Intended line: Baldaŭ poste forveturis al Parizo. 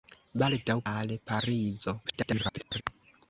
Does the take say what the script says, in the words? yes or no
no